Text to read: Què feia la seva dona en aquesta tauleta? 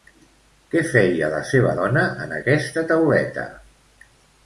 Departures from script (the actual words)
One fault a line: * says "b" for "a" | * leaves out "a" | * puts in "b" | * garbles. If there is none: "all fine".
all fine